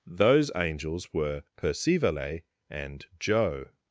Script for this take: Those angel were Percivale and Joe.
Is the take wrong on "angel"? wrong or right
wrong